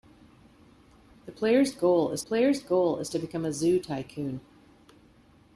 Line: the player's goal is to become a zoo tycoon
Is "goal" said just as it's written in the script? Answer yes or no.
yes